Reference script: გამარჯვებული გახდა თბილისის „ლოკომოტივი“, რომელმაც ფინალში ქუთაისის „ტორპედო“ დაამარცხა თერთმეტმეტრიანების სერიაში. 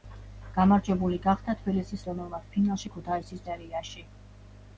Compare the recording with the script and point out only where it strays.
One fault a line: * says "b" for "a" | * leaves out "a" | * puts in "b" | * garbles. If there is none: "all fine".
* leaves out "ლოკომოტივი"
* leaves out "ტორპედო დაამარცხა თერთმეტმეტრიანების"